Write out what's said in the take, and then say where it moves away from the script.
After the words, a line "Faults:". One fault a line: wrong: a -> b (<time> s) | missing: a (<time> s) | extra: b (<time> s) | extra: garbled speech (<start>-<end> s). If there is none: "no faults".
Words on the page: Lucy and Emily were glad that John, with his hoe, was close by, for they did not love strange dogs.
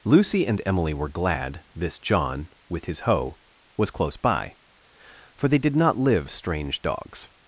Lucy and Emily were glad this John, with his hoe, was close by, for they did not live strange dogs.
Faults:
wrong: that -> this (1.8 s)
wrong: love -> live (6.0 s)